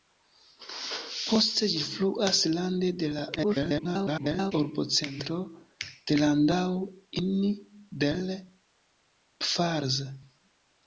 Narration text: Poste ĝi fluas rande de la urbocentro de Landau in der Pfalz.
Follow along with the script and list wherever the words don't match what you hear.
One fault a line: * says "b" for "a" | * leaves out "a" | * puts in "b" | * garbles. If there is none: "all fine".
* garbles